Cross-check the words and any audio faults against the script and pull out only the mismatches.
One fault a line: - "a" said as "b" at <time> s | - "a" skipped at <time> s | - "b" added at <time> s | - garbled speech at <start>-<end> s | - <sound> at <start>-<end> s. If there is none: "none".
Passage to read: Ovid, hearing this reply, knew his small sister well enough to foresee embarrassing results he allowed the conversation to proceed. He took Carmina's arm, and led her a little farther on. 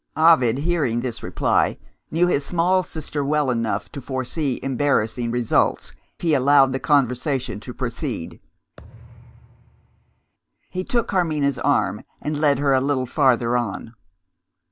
- thud at 8.8-10.3 s